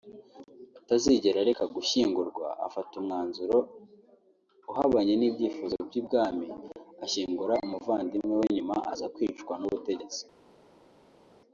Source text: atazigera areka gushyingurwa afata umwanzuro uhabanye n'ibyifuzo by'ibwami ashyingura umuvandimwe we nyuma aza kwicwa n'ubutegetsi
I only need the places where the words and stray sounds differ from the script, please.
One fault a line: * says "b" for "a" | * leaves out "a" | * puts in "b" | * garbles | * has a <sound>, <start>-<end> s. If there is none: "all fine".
all fine